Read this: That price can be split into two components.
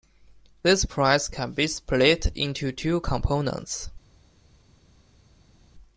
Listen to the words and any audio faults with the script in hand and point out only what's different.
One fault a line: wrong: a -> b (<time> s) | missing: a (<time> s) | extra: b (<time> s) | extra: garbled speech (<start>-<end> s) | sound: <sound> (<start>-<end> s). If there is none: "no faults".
wrong: That -> This (0.6 s)